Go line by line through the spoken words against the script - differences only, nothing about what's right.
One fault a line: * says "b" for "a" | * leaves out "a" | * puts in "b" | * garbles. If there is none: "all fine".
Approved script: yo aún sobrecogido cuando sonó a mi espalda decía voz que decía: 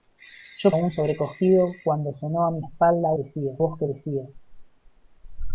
all fine